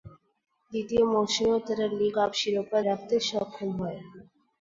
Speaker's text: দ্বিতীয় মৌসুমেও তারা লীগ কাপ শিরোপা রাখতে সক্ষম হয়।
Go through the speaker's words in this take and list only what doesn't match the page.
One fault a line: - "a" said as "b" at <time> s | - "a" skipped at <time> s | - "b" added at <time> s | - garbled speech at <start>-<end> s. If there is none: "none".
none